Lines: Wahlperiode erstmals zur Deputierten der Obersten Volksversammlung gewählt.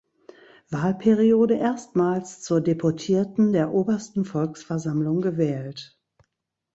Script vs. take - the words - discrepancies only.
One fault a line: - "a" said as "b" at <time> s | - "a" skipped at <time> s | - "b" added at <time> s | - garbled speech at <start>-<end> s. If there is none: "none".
none